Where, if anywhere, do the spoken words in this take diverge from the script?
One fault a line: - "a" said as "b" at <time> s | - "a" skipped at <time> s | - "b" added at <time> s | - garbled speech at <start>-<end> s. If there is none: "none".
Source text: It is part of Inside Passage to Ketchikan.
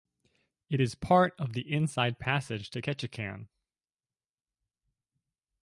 - "the" added at 1.5 s